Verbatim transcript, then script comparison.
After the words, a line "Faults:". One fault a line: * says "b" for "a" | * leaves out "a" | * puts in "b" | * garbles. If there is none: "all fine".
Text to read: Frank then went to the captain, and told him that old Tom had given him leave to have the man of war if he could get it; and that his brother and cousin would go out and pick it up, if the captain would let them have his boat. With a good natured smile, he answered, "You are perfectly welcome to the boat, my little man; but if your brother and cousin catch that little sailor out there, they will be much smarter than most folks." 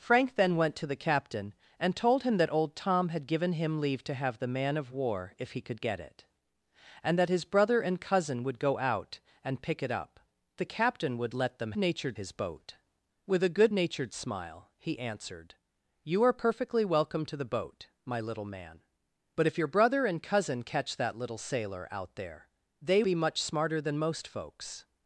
Frank then went to the captain, and told him that old Tom had given him leave to have the man of war if he could get it; and that his brother and cousin would go out and pick it up, the captain would let them natured his boat. With a good natured smile, he answered, "You are perfectly welcome to the boat, my little man; but if your brother and cousin catch that little sailor out there, they be much smarter than most folks."
Faults:
* leaves out "if"
* says "natured" for "have"
* leaves out "will"